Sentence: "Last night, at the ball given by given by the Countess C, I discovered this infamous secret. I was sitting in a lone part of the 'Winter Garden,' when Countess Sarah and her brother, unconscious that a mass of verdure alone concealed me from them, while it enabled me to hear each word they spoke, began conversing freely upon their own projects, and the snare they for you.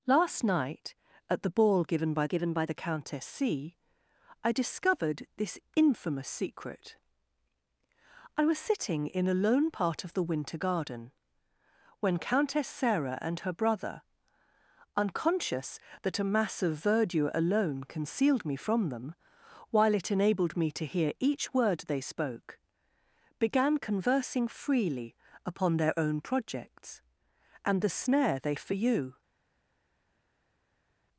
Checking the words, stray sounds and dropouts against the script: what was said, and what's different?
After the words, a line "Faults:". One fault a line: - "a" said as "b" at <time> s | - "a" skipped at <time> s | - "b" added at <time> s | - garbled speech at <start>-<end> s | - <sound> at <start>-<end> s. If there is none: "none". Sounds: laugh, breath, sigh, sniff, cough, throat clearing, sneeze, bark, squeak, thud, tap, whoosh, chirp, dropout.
"Last night, at the ball given by given by the Countess C, I discovered this infamous secret. I was sitting in a lone part of the 'Winter Garden,' when Countess Sarah and her brother, unconscious that a mass of verdure alone concealed me from them, while it enabled me to hear each word they spoke, began conversing freely upon their own projects, and the snare they for you.
Faults:
none